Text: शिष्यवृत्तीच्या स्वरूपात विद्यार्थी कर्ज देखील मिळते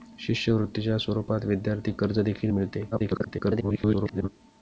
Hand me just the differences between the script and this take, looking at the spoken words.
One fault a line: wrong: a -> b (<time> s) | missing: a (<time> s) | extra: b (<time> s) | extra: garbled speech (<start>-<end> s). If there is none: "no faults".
extra: garbled speech (2.9-4.3 s)